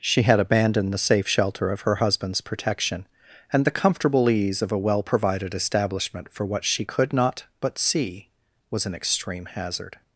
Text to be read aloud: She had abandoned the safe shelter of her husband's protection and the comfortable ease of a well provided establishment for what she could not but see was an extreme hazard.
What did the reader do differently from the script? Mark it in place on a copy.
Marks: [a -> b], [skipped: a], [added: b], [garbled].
She had abandoned the safe shelter of her husband's protection and the comfortable ease of a well provided establishment for what she could not but see was an extreme hazard.